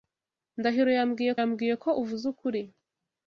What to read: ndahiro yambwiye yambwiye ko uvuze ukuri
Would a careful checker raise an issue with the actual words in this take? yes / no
no